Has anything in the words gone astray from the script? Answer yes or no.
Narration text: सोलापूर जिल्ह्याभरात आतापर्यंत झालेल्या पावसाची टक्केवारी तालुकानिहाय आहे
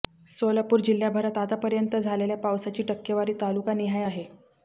no